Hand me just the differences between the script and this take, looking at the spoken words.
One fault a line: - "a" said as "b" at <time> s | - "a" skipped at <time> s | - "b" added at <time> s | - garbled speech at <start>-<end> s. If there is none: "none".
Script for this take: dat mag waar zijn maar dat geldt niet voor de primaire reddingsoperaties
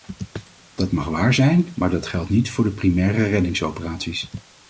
none